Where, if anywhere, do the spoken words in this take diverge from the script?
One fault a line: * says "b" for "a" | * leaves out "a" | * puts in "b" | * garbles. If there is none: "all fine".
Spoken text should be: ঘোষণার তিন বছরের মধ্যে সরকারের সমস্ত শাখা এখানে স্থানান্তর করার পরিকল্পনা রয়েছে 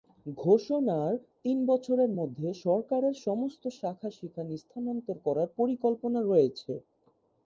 * says "সেখানে" for "এখানে"